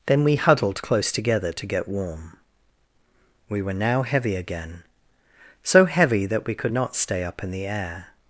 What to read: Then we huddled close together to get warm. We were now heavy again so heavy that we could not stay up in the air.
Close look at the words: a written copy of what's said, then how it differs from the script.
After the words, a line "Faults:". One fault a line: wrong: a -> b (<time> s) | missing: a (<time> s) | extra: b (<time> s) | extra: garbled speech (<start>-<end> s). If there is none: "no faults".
Then we huddled close together to get warm. We were now heavy again so heavy that we could not stay up in the air.
Faults:
no faults